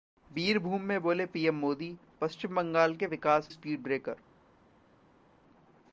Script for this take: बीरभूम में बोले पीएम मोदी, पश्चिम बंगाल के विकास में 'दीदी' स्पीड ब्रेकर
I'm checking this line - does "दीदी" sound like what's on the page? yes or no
no